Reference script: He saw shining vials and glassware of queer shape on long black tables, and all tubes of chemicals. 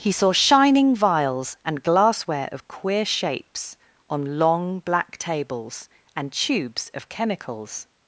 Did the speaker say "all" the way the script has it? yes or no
no